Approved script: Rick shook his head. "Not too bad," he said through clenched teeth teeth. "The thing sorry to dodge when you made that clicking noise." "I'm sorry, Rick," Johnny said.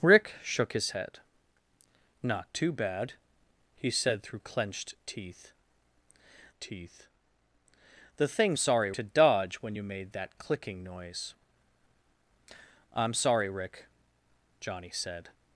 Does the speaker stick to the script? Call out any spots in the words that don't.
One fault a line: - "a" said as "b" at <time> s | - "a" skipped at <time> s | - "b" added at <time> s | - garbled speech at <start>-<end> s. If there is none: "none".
none